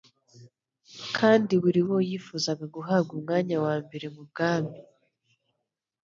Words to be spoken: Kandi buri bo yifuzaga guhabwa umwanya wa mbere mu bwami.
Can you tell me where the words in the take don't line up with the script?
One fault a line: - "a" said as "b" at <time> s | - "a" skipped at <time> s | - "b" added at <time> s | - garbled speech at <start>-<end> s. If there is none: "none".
none